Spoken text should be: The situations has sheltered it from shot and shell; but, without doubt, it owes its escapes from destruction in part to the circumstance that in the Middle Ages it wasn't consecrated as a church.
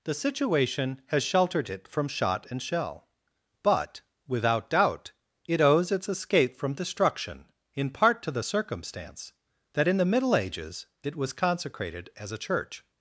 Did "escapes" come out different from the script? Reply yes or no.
yes